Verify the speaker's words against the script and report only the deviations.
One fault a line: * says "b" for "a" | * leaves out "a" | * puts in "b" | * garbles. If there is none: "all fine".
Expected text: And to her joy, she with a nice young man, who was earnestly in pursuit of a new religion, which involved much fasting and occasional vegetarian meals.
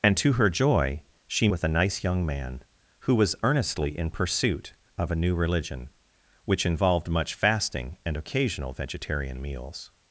all fine